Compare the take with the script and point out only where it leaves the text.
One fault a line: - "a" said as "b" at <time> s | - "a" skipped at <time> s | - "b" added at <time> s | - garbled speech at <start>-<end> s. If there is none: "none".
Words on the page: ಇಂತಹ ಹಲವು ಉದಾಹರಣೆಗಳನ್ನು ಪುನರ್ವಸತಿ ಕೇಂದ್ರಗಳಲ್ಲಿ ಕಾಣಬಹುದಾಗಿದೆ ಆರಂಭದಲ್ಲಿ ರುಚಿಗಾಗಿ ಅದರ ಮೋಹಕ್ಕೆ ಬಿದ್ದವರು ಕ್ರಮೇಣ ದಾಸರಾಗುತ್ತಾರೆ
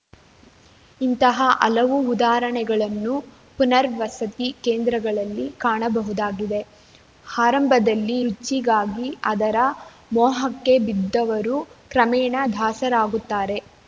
none